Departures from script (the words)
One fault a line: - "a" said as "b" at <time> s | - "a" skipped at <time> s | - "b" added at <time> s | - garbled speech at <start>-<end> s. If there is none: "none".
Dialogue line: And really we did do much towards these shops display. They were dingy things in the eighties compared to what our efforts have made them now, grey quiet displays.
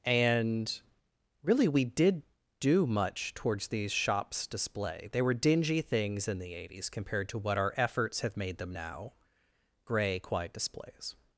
none